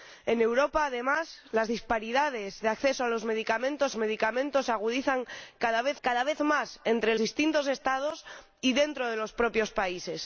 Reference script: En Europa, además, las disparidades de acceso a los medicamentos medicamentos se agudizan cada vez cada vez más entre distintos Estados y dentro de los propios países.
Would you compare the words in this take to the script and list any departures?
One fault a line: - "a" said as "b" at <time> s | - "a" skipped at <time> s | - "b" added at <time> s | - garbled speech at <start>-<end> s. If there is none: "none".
none